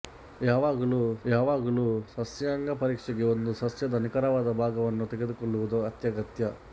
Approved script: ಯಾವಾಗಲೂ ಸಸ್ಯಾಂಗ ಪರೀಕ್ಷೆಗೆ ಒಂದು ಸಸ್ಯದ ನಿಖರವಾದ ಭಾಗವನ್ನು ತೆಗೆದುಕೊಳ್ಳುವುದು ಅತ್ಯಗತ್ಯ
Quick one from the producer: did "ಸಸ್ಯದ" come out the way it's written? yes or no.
yes